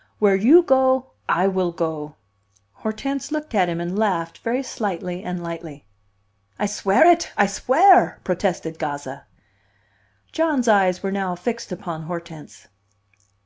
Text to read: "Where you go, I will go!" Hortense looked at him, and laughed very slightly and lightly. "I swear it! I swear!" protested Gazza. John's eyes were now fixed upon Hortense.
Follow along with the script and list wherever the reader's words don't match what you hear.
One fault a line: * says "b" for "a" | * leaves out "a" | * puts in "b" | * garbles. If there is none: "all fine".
all fine